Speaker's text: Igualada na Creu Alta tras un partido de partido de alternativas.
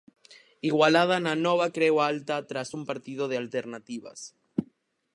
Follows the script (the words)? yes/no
no